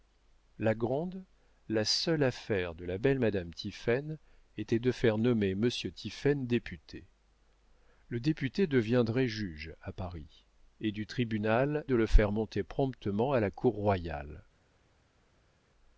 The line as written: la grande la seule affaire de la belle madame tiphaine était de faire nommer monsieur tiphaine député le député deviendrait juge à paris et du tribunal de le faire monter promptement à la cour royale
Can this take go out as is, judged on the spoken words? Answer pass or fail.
pass